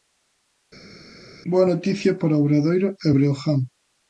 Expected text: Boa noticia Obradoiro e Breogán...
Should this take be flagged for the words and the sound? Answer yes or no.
yes